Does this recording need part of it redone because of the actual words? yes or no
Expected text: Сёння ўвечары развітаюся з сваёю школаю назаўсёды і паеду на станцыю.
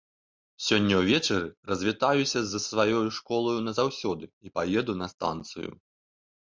no